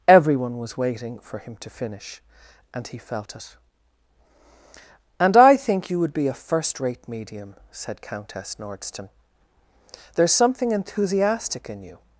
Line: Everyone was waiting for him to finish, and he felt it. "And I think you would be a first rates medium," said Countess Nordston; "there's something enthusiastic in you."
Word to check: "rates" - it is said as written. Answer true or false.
false